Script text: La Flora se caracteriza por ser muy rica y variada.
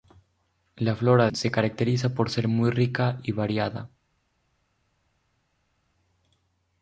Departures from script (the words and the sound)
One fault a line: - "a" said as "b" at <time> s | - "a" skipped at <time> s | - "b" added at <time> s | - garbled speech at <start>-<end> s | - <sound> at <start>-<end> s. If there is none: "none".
none